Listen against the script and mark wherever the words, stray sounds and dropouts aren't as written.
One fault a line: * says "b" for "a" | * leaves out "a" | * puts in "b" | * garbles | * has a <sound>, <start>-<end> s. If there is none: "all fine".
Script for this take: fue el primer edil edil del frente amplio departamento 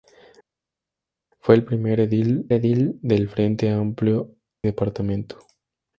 all fine